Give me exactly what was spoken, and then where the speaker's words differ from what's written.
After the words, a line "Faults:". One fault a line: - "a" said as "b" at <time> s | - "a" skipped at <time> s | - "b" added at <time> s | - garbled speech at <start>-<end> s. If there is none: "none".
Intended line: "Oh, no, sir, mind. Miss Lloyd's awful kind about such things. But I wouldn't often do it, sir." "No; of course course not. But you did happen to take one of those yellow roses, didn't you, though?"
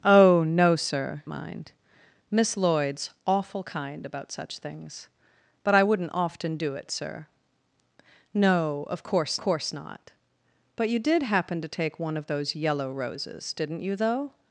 "Oh, no, sir, mind. Miss Lloyd's awful kind about such things. But I wouldn't often do it, sir." "No; of course course not. But you did happen to take one of those yellow roses, didn't you, though?"
Faults:
none